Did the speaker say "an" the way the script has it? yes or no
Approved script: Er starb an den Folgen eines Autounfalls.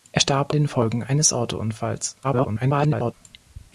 no